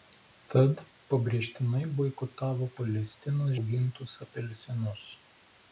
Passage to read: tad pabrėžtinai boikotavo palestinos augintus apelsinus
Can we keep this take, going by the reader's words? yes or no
yes